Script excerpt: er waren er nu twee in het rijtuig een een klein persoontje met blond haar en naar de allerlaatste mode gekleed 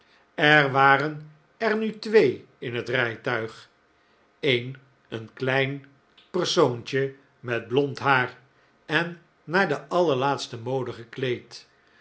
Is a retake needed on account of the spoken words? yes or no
no